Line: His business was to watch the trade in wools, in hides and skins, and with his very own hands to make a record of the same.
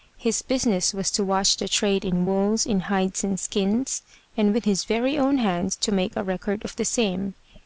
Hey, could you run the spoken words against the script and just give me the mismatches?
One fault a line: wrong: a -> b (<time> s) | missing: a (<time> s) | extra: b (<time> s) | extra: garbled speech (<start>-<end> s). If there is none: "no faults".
no faults